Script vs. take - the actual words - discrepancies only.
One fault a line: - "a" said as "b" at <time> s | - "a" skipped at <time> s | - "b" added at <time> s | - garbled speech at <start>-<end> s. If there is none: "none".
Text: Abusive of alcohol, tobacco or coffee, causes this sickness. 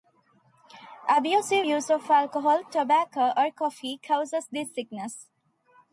- "use" added at 1.6 s